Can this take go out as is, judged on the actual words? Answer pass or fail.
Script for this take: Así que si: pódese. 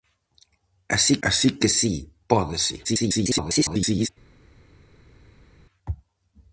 fail